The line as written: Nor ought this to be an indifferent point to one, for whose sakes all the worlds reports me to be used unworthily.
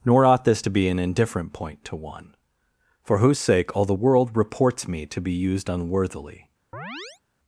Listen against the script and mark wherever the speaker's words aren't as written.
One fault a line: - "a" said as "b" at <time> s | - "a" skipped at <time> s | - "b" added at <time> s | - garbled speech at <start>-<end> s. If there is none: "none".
- "sakes" said as "sake" at 3.4 s
- "worlds" said as "world" at 3.9 s